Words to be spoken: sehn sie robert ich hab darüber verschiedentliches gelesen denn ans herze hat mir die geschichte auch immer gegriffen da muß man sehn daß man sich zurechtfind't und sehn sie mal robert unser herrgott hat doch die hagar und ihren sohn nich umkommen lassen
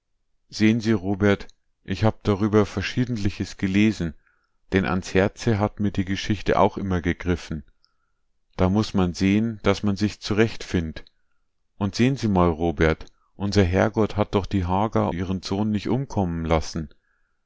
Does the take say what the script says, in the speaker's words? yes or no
no